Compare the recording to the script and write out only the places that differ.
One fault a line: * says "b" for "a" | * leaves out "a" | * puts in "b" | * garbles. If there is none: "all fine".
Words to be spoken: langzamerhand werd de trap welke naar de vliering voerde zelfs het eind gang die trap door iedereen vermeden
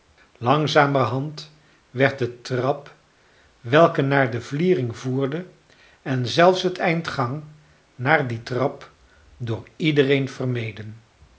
* puts in "en"
* puts in "naar"